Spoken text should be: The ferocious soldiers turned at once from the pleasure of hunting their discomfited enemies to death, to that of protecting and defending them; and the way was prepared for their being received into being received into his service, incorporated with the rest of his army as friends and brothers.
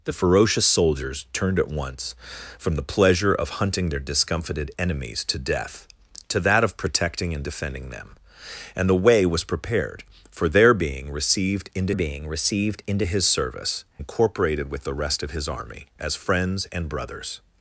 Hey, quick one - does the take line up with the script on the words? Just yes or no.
yes